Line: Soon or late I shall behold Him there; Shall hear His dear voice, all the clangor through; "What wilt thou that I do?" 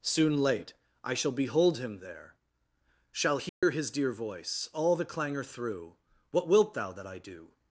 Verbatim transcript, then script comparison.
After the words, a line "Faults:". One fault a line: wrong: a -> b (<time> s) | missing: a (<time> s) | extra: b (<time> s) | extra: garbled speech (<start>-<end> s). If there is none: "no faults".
Soon late I shall behold Him there; Shall hear His dear voice, all the clangor through; "What wilt thou that I do?"
Faults:
missing: or (0.4 s)